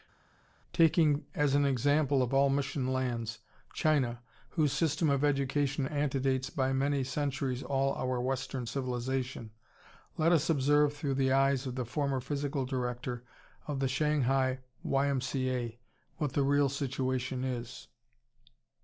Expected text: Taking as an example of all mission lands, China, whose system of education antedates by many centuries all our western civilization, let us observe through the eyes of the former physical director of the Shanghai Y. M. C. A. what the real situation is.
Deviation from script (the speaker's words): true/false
false